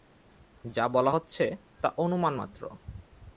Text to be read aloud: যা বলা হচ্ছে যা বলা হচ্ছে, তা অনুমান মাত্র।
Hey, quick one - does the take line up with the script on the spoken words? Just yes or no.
no